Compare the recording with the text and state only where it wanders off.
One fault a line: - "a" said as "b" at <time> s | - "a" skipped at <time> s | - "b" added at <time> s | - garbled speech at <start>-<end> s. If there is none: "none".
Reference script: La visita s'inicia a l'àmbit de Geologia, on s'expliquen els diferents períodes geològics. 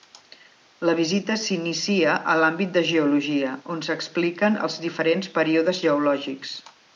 none